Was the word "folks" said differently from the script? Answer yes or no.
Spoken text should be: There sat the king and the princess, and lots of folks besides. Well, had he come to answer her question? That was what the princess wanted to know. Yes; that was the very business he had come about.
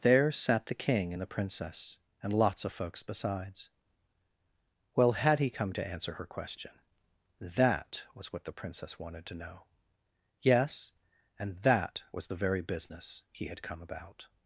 no